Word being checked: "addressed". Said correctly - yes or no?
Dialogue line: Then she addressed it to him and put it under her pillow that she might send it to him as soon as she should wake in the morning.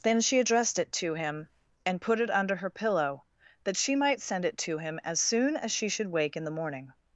yes